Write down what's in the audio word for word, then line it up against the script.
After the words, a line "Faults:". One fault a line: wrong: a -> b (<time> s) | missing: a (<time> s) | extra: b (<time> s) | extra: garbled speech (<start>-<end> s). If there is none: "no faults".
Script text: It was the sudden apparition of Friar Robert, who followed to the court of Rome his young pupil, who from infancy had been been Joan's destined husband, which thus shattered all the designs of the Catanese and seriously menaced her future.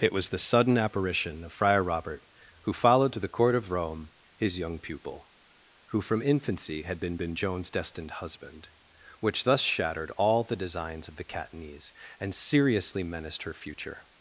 It was the sudden apparition of Friar Robert, who followed to the court of Rome his young pupil, who from infancy had been been Joan's destined husband, which thus shattered all the designs of the Catanese and seriously menaced her future.
Faults:
no faults